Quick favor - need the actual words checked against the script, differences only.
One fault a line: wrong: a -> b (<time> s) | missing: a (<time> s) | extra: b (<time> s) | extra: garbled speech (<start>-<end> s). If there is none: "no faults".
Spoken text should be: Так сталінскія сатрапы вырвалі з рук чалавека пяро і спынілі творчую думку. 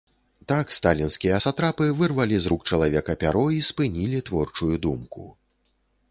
no faults